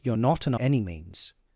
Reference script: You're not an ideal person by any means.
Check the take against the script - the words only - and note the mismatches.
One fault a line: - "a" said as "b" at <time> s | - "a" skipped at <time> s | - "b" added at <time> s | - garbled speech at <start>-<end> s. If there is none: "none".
- "ideal person by" skipped at 0.5 s